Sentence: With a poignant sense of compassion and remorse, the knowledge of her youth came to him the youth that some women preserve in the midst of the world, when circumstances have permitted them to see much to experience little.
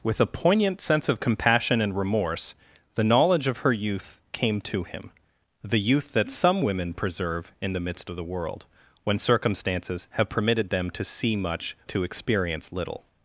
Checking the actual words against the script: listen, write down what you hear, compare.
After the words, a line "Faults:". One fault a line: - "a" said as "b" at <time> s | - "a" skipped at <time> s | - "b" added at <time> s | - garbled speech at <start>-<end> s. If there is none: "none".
With a poignant sense of compassion and remorse, the knowledge of her youth came to him the youth that some women preserve in the midst of the world, when circumstances have permitted them to see much to experience little.
Faults:
none